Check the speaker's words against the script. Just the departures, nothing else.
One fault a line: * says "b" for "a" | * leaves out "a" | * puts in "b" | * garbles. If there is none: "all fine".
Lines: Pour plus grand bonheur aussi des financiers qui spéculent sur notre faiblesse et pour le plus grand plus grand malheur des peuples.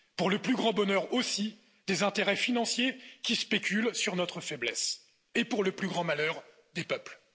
* puts in "le"
* puts in "intérêts"
* leaves out "plus grand"